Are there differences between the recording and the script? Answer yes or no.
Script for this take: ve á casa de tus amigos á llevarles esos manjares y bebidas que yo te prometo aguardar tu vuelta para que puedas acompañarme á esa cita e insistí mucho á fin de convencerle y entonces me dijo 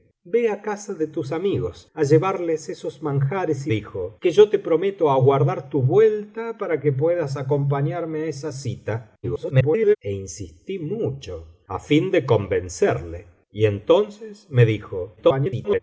yes